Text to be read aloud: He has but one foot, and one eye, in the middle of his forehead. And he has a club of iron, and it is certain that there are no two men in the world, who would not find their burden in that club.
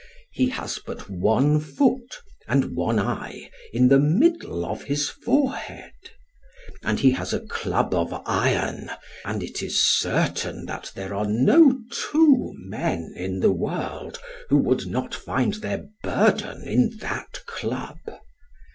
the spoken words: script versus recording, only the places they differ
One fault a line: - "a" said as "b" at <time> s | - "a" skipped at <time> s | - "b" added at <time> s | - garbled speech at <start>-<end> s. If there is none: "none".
none